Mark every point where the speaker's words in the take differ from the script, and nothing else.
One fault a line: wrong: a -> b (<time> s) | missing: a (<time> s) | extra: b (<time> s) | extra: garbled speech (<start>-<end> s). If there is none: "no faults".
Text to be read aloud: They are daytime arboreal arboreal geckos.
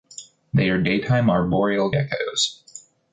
missing: arboreal (1.9 s)